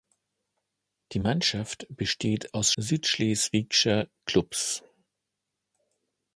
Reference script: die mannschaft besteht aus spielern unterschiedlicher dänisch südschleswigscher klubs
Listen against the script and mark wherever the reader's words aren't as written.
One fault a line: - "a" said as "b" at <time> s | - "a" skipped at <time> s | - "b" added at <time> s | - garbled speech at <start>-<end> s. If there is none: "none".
- "spielern unterschiedlicher dänisch" skipped at 2.7 s